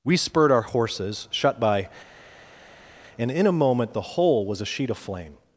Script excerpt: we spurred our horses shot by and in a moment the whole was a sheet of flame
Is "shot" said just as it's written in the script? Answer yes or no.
no